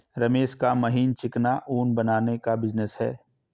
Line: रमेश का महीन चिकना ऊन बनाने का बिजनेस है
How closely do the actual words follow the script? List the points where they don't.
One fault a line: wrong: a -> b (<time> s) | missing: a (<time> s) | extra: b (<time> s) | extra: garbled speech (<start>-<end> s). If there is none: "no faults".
no faults